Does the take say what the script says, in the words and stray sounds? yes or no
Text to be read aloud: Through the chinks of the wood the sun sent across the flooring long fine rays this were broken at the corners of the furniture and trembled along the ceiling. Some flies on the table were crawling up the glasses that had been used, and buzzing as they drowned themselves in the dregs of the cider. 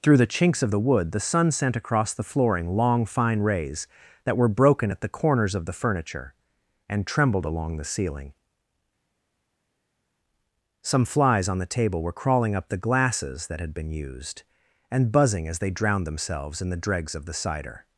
no